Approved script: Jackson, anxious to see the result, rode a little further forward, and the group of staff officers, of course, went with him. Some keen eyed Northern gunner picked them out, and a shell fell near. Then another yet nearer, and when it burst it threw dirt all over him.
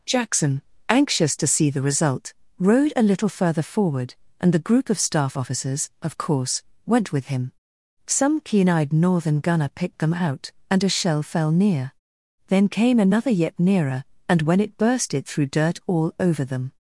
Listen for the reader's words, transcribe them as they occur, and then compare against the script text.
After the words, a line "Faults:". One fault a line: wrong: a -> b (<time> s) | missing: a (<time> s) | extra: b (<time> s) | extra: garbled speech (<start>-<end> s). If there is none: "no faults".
Jackson, anxious to see the result, rode a little further forward, and the group of staff officers, of course, went with him. Some keen eyed Northern gunner picked them out, and a shell fell near. Then came another yet nearer, and when it burst it threw dirt all over them.
Faults:
extra: came (12.7 s)
wrong: him -> them (16.4 s)